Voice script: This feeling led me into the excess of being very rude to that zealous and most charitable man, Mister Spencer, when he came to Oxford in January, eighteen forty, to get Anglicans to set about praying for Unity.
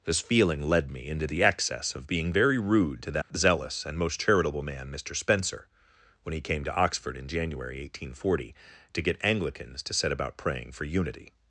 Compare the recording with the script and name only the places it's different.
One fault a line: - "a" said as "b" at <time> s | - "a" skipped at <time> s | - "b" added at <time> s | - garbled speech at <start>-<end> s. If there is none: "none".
none